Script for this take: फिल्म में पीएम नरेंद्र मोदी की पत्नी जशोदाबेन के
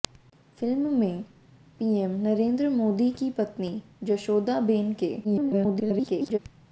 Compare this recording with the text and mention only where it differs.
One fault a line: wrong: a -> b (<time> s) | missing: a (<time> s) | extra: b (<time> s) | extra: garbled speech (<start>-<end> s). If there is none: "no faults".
extra: garbled speech (5.2-6.4 s)